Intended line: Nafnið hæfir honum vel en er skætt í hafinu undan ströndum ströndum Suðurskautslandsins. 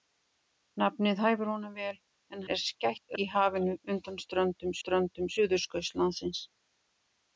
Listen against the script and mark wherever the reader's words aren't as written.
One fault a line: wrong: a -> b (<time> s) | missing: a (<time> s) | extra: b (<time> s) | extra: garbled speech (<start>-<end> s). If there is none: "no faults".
no faults